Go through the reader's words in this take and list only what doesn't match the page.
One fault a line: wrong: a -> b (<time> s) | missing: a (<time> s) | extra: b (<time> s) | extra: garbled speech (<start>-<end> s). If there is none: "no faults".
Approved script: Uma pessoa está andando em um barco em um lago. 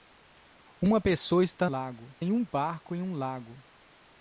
wrong: andando -> lago (1.6 s)